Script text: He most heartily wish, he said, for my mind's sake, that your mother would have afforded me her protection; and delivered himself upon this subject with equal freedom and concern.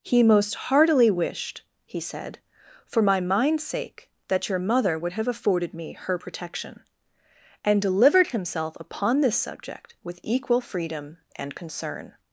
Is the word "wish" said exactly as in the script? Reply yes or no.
no